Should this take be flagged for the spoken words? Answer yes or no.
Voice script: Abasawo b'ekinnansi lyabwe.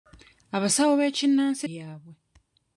no